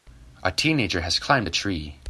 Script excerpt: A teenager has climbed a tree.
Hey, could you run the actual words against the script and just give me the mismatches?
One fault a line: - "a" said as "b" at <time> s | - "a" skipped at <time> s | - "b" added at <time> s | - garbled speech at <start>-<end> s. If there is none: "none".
none